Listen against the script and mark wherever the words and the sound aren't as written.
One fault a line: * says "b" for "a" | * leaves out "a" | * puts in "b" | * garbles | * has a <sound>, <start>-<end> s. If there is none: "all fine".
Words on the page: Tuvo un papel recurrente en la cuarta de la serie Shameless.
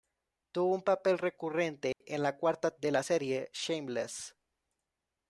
* has a dropout, 1.9-2.0 s